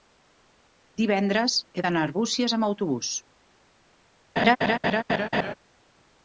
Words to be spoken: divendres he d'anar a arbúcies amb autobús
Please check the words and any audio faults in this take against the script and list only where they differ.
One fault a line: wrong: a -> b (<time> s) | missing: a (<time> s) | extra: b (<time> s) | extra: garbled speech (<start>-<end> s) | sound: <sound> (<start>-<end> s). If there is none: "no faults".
sound: laugh (4.4-5.5 s)